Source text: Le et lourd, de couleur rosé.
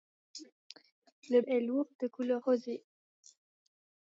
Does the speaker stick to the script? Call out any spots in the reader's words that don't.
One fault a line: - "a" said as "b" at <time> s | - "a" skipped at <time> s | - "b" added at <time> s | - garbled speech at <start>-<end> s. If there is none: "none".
none